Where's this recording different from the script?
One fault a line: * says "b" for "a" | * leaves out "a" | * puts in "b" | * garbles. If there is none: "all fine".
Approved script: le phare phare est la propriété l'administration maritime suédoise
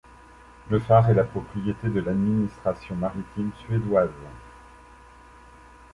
* leaves out "phare"
* puts in "de"